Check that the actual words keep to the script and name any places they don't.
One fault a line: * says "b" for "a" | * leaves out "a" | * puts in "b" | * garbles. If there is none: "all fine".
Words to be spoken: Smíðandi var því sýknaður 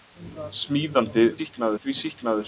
* says "sýknaður" for "var"